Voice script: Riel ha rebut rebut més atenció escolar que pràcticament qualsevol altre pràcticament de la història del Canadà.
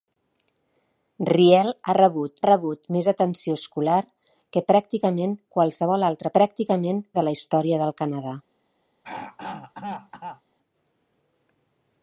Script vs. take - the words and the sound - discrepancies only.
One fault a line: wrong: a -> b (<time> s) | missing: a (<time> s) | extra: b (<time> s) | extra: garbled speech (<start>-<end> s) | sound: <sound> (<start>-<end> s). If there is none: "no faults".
sound: throat clearing (9.0-10.4 s)